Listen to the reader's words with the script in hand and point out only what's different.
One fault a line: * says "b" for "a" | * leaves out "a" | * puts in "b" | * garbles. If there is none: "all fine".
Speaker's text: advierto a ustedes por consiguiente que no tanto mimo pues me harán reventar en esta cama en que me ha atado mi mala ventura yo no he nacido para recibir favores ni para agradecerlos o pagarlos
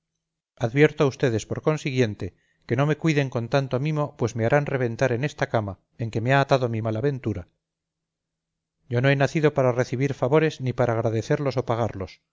* puts in "me cuiden con"